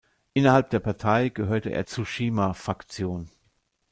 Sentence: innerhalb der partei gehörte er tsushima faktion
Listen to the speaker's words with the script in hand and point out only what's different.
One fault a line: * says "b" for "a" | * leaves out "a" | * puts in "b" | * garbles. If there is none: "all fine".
all fine